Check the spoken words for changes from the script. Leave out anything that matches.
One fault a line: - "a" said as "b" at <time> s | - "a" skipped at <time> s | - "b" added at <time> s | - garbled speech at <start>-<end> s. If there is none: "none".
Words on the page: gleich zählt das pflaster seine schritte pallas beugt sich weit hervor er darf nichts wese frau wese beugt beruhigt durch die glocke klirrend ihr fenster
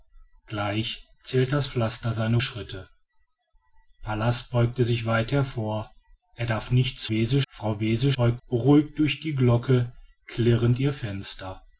none